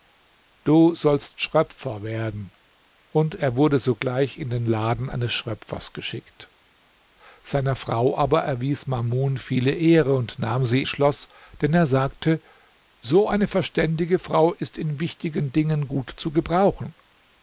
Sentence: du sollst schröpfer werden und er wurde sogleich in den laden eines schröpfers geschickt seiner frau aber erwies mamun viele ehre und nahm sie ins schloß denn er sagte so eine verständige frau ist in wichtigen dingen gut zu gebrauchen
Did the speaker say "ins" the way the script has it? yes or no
no